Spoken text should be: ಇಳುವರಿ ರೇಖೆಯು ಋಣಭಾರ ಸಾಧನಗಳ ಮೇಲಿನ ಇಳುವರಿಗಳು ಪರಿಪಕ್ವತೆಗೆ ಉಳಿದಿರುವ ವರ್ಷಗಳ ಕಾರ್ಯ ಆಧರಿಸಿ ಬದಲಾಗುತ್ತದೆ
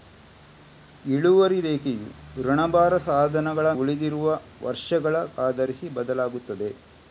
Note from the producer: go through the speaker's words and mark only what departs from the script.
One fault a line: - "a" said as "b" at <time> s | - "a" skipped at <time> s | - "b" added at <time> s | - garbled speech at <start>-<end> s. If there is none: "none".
- "ಮೇಲಿನ ಇಳುವರಿಗಳು ಪರಿಪಕ್ವತೆಗೆ" skipped at 3.7 s
- "ಕಾರ್ಯ" skipped at 5.1 s